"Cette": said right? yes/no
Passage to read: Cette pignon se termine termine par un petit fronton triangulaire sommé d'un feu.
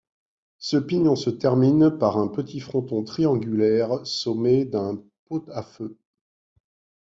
no